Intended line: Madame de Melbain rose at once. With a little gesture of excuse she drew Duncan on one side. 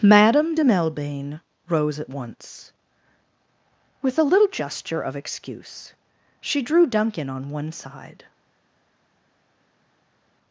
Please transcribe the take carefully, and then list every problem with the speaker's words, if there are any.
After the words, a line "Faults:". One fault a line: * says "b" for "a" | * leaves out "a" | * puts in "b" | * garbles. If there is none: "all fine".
Madame de Melbain rose at once. With a little gesture of excuse she drew Duncan on one side.
Faults:
all fine